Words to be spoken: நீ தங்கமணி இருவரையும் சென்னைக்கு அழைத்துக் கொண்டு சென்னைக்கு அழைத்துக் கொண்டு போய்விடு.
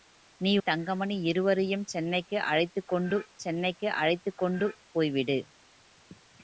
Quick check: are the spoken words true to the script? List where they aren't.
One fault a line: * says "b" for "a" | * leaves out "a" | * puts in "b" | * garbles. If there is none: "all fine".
all fine